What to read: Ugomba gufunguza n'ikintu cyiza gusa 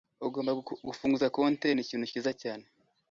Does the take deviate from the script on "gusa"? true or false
true